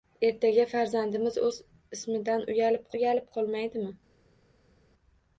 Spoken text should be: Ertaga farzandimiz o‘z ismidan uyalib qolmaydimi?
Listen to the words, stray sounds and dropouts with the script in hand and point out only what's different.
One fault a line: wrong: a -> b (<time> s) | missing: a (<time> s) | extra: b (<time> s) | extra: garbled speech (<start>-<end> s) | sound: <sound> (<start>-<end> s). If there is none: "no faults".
extra: uyalib (3.0 s)